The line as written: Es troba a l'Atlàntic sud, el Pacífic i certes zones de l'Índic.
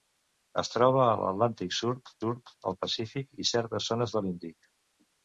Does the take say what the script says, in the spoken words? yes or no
no